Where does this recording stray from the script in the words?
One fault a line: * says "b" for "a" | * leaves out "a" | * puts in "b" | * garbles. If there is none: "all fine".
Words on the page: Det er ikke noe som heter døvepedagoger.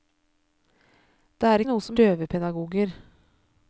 * leaves out "ikke"
* leaves out "heter"